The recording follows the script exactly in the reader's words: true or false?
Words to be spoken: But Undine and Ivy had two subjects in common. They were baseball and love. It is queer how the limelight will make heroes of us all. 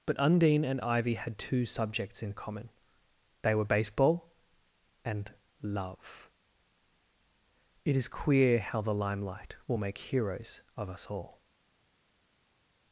true